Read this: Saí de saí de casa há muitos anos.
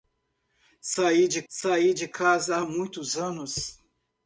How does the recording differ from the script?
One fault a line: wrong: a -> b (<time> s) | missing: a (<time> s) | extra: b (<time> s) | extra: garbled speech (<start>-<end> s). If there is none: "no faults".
no faults